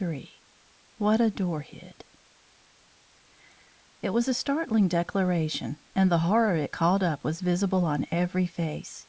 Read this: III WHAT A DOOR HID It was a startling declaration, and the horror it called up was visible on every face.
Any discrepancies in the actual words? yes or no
no